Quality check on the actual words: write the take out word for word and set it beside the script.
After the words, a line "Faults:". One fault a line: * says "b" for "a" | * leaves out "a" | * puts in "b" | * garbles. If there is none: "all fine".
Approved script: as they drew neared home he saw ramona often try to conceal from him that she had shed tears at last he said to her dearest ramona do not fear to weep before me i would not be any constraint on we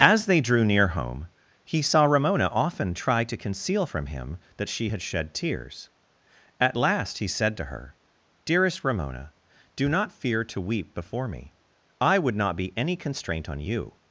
as they drew near home he saw ramona often try to conceal from him that she had shed tears at last he said to her dearest ramona do not fear to weep before me i would not be any constraint on you
Faults:
* says "near" for "neared"
* says "you" for "we"